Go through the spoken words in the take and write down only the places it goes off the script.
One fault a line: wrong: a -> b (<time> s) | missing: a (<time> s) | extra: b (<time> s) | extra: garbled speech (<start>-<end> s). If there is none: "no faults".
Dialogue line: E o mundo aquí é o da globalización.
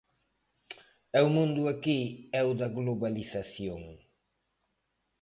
no faults